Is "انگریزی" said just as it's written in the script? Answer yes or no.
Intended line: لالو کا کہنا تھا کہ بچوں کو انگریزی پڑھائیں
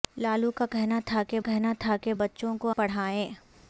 no